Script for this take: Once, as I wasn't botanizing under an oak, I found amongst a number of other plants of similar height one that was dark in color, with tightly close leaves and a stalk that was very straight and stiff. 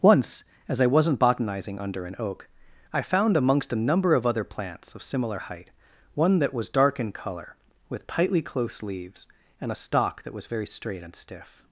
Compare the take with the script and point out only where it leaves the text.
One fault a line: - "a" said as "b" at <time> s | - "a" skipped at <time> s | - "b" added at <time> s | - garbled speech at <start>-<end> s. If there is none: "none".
none